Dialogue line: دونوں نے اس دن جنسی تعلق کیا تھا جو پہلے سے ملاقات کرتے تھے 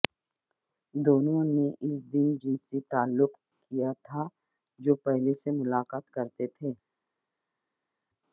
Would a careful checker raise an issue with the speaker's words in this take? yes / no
no